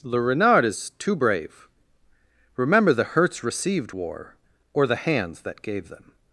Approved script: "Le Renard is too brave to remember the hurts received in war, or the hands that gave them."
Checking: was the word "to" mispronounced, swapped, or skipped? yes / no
yes